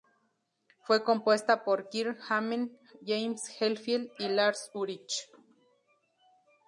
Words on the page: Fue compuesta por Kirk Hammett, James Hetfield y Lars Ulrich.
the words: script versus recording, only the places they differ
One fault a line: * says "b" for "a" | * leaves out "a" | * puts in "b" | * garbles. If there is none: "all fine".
all fine